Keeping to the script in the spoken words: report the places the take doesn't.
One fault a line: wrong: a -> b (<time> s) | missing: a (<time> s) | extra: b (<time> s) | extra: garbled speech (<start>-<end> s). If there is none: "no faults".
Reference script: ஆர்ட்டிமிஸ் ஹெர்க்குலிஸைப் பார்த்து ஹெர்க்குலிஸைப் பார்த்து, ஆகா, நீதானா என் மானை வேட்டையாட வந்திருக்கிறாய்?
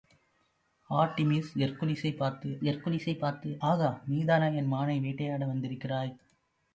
no faults